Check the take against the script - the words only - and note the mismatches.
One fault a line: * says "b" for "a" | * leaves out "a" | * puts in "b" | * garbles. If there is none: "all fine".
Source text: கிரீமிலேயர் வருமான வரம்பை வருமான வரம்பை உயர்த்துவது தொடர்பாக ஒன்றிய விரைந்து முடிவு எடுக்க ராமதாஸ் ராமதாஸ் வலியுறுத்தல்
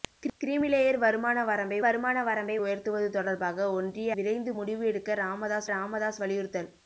all fine